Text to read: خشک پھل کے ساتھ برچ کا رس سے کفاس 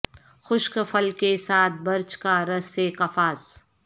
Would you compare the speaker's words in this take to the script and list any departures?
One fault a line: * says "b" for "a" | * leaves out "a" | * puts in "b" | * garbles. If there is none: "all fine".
all fine